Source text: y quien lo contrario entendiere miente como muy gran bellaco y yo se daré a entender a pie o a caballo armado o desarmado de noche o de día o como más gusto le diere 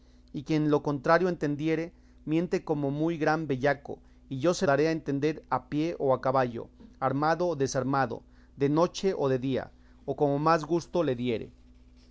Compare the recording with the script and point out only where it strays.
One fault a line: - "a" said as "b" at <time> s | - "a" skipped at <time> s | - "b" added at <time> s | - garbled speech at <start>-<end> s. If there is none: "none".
none